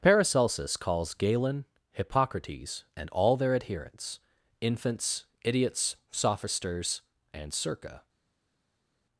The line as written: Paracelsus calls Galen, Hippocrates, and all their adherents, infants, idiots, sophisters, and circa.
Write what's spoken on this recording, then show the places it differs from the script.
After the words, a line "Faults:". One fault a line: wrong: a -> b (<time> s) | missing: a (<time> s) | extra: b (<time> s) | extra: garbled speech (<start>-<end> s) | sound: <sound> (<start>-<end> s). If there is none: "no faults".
Paracelsus calls Galen, Hippocrates, and all their adherents, infants, idiots, sophisters, and circa.
Faults:
no faults